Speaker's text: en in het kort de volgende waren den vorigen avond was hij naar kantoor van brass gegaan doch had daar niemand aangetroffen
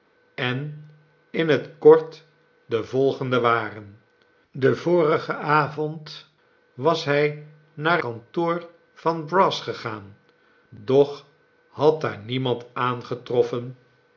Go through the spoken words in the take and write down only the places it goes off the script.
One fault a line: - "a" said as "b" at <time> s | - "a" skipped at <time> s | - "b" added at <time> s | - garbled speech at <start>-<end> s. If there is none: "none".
none